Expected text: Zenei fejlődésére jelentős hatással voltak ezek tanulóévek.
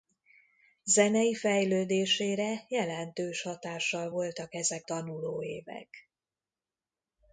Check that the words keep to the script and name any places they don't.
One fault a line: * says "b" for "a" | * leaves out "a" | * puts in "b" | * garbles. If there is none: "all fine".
all fine